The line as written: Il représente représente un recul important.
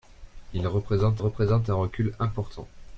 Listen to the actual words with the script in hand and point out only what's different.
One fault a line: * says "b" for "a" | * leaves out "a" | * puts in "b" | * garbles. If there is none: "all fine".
all fine